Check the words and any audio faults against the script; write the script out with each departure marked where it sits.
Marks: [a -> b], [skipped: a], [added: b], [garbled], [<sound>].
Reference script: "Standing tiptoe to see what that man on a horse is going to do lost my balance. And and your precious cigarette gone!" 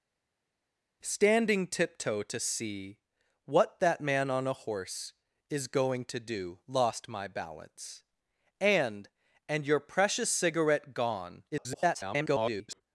"Standing tiptoe to see what that man on a horse is going to do lost my balance. And and your precious cigarette gone!" [garbled]